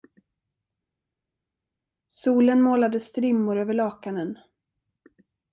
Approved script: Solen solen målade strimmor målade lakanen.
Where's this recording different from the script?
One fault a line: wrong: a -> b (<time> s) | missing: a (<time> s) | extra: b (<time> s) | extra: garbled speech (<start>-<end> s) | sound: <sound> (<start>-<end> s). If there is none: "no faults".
missing: solen (2.6 s)
wrong: målade -> över (3.6 s)